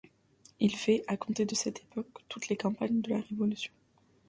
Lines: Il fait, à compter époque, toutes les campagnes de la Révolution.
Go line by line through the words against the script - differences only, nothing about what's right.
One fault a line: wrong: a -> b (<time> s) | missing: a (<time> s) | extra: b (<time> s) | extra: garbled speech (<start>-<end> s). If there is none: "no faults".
extra: de cette (1.4 s)